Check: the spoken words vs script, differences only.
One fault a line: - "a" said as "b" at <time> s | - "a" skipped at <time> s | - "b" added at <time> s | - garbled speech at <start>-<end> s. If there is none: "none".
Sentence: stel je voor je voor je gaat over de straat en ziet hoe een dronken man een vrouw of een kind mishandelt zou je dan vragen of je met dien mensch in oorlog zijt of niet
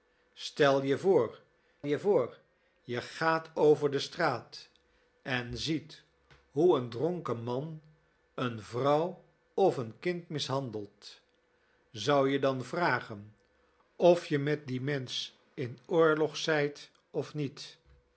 none